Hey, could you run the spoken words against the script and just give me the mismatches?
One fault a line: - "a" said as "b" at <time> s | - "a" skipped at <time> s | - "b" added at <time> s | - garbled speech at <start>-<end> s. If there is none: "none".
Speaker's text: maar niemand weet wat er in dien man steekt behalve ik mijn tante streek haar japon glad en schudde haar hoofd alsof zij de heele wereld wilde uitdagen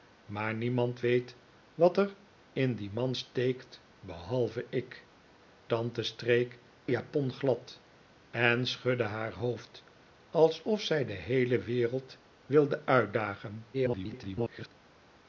- "mijn" skipped at 5.1 s
- "haar" skipped at 6.6 s
- garbled speech at 13.7-14.7 s